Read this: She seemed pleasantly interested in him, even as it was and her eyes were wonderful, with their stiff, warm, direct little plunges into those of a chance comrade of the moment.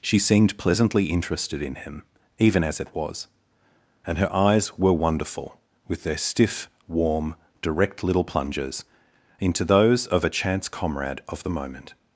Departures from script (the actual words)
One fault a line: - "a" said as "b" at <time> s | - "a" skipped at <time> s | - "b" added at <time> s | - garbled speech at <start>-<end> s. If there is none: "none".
none